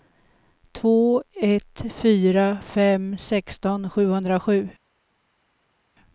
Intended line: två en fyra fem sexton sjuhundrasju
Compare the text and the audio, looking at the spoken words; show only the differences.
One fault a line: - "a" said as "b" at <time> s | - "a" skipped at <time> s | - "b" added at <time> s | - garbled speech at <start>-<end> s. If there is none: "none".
- "en" said as "ett" at 1.3 s